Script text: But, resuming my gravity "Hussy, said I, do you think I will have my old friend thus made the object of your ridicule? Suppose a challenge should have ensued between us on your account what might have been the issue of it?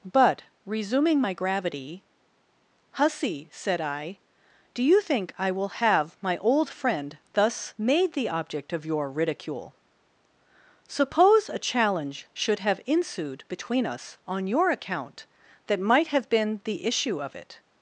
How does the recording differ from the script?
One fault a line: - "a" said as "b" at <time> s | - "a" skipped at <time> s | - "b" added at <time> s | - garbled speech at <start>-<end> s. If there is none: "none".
- "what" said as "that" at 15.7 s